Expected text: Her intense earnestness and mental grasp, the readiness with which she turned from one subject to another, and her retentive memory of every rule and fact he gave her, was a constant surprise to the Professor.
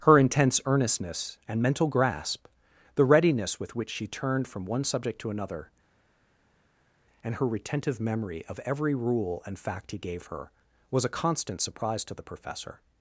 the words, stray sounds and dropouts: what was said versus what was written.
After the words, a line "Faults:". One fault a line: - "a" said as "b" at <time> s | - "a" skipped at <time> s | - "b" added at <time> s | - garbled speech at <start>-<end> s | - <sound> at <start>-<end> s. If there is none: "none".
Her intense earnestness and mental grasp, the readiness with which she turned from one subject to another, and her retentive memory of every rule and fact he gave her, was a constant surprise to the Professor.
Faults:
none